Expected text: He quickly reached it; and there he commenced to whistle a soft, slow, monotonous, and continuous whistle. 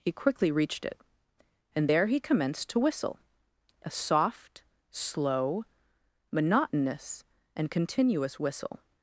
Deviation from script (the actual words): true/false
false